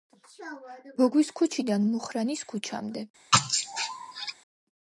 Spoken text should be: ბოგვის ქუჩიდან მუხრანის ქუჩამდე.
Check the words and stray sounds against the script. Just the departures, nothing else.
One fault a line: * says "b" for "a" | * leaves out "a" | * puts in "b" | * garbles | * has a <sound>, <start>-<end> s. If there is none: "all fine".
* has a sneeze, 3.3-4.3 s